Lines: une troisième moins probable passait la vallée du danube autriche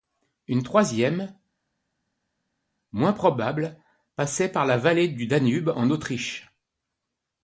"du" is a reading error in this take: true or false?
false